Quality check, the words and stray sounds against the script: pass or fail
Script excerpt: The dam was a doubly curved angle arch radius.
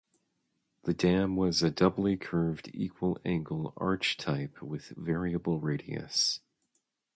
fail